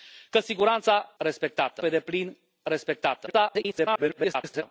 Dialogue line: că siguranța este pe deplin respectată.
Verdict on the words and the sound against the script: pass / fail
fail